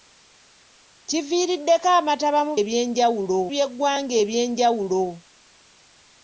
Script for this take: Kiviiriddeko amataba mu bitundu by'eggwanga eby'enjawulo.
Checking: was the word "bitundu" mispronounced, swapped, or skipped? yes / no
yes